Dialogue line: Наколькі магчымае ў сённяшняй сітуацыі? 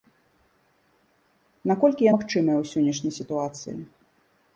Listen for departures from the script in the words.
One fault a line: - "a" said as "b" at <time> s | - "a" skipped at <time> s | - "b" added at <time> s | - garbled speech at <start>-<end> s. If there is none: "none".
none